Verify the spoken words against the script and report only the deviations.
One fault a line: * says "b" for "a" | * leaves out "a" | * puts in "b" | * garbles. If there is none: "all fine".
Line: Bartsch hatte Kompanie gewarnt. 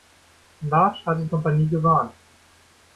all fine